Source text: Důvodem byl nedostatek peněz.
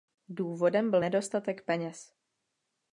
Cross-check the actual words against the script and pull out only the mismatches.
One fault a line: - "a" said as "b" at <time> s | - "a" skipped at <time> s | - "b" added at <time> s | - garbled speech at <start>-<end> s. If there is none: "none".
none